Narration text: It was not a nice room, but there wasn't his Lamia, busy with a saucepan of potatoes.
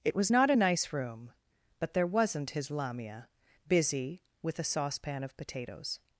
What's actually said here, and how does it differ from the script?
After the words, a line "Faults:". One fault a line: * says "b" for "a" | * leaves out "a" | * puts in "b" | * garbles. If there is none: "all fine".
It was not a nice room, but there wasn't his Lamia, busy with a saucepan of potatoes.
Faults:
all fine